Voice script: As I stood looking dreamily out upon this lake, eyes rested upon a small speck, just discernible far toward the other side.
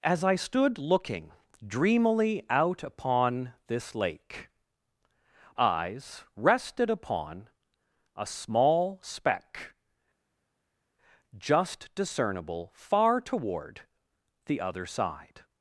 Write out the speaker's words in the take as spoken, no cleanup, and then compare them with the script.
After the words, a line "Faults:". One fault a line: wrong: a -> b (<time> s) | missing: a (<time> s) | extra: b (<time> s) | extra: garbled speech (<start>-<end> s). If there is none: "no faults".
As I stood looking dreamily out upon this lake, eyes rested upon a small speck, just discernible far toward the other side.
Faults:
no faults